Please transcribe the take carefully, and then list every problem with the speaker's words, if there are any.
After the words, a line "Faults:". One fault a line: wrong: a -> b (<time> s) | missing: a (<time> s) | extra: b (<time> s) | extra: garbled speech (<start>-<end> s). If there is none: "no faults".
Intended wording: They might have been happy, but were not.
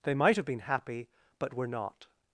They might have been happy, but were not.
Faults:
no faults